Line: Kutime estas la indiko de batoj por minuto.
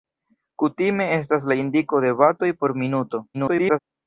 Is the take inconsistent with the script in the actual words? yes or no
yes